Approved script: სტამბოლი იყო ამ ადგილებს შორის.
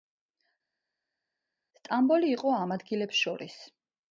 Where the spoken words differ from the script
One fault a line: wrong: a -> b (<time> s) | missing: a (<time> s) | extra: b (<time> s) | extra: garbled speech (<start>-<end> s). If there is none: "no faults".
no faults